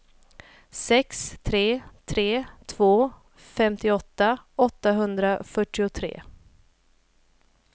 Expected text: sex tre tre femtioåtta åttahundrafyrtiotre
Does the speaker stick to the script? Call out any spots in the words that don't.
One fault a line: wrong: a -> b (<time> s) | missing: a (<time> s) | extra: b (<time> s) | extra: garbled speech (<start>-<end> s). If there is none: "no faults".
extra: två (2.6 s)